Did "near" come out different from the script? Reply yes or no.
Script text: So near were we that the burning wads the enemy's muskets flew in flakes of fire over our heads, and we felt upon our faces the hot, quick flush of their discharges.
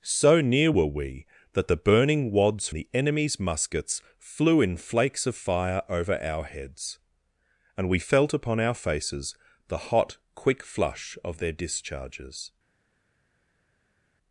no